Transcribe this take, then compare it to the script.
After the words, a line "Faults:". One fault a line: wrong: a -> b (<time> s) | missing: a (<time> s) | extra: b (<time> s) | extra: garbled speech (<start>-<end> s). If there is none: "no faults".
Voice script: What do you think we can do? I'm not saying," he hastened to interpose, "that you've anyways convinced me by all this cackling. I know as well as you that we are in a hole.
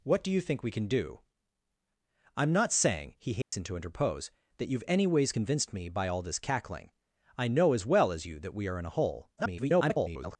What do you think we can do? I'm not saying," he hastened to interpose, "that you've anyways convinced me by all this cackling. I know as well as you that we are in a hole. [garbled]
Faults:
extra: garbled speech (9.4-10.4 s)